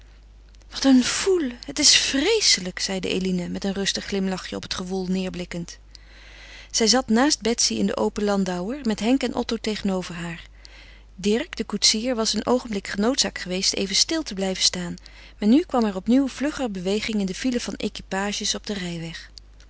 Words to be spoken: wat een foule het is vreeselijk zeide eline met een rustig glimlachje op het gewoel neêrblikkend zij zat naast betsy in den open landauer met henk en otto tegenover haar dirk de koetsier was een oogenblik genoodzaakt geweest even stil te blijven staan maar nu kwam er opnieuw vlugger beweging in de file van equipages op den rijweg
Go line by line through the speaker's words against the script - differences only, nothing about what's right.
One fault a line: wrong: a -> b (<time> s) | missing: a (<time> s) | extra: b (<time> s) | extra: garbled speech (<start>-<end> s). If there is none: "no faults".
no faults